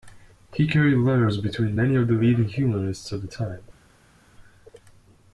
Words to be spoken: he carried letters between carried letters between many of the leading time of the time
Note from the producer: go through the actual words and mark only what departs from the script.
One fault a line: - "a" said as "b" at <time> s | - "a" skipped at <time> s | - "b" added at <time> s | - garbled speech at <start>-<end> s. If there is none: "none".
- "carried letters between" skipped at 1.8 s
- "time" said as "humanists" at 2.5 s